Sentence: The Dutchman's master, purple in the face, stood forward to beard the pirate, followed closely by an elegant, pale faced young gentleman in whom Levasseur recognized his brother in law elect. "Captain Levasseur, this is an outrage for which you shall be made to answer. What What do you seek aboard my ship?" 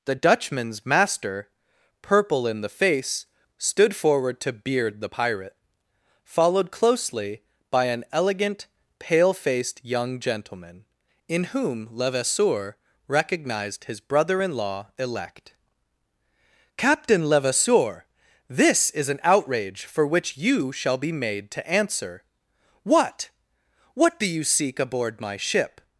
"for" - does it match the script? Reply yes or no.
yes